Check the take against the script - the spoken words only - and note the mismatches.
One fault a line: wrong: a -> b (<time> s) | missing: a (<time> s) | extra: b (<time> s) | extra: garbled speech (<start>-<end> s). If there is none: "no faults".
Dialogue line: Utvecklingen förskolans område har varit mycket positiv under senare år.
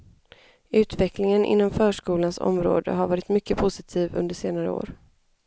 extra: inom (1.4 s)